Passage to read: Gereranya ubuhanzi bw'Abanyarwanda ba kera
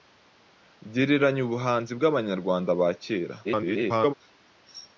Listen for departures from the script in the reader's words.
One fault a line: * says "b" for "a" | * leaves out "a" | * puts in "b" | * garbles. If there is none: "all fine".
* garbles